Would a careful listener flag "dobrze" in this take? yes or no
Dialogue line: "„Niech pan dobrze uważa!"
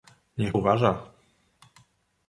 yes